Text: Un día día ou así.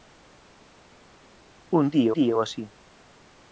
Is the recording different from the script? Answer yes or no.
no